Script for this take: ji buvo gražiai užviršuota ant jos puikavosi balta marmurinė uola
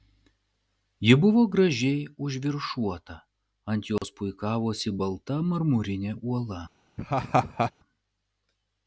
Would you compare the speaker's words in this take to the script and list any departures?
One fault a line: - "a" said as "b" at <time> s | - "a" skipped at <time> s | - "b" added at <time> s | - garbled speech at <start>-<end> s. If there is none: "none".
none